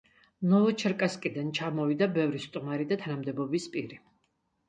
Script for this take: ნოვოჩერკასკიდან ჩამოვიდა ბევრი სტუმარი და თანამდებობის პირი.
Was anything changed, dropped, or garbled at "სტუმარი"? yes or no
no